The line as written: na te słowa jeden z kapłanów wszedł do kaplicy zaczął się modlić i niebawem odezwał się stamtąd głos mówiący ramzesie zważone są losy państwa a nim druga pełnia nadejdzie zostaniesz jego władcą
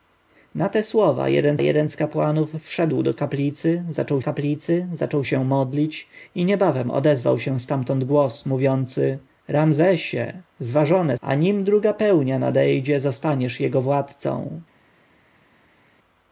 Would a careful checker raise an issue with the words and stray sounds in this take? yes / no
yes